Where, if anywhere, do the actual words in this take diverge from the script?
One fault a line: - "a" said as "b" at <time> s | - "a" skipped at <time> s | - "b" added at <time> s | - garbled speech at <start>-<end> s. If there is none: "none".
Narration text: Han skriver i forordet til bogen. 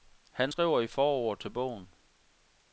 none